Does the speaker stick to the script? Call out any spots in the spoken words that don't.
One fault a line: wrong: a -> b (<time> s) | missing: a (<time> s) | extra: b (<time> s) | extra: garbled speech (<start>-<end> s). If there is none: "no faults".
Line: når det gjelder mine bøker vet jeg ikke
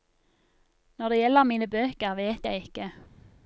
no faults